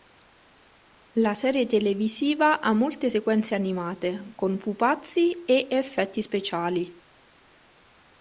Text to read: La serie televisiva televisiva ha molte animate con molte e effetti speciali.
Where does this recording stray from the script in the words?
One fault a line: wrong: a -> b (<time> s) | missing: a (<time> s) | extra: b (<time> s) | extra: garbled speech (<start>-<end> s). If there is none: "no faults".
missing: televisiva (2.6 s)
extra: sequenze (3.1 s)
wrong: molte -> pupazzi (4.6 s)